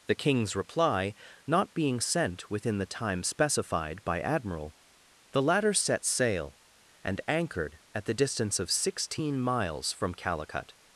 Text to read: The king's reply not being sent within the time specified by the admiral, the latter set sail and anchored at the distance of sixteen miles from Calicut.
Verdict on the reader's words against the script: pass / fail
fail